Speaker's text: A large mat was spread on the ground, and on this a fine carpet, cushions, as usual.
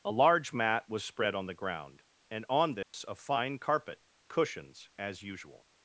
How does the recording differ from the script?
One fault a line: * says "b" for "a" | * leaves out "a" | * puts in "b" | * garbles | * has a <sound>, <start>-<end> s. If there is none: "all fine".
* has a dropout, 2.8-2.9 s